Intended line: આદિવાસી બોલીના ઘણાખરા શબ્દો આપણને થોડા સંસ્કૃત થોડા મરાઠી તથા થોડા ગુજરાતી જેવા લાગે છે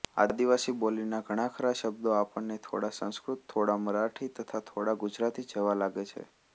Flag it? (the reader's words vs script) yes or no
no